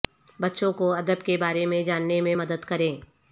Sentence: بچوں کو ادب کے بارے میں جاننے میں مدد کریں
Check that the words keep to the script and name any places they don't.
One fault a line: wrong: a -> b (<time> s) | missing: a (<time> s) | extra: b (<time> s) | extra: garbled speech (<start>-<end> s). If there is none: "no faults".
no faults